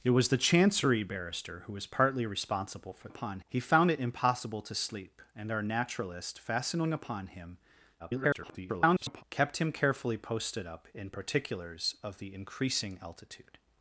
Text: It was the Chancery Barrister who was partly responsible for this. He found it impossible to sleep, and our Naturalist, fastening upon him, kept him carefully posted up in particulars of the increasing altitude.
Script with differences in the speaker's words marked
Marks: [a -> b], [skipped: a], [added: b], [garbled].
It was the Chancery Barrister who was partly responsible for [this. -> upon] He found it impossible to sleep, and our Naturalist, fastening upon him, [garbled] kept him carefully posted up in particulars of the increasing altitude.